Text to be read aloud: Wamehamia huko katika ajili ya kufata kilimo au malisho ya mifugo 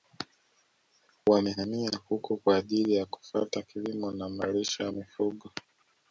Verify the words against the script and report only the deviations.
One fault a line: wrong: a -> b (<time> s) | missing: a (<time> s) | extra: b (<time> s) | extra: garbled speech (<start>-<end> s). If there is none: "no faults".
wrong: katika -> kwa (2.4 s)
wrong: au -> na (4.1 s)